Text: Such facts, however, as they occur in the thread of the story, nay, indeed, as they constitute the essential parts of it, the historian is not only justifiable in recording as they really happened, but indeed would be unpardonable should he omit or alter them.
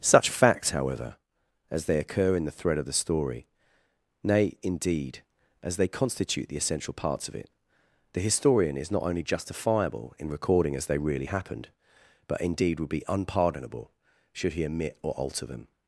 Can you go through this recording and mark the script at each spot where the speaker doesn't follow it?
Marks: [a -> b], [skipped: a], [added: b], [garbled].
Such facts, however, as they occur in the thread of the story, nay, indeed, as they constitute the essential parts of it, the historian is not only justifiable in recording as they really happened, but indeed would be unpardonable should he omit or alter them.